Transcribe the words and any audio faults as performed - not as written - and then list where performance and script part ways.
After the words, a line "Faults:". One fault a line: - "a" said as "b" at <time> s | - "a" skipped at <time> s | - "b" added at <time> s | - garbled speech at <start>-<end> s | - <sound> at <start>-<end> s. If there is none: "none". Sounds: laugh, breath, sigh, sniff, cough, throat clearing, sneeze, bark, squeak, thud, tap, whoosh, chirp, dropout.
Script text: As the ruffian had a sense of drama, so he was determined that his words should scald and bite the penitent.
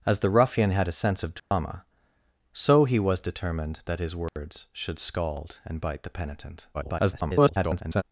As the ruffian had a sense of drama, so he was determined that his words should scald and bite the penitent. [garbled]
Faults:
- dropout at 1.4-1.5 s
- dropout at 4.3-4.4 s
- garbled speech at 6.7-8.0 s